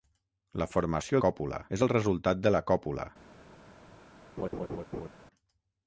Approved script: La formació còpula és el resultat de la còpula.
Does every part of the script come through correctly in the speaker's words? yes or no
yes